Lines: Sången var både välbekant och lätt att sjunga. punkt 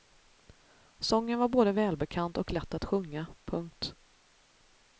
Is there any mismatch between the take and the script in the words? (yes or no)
no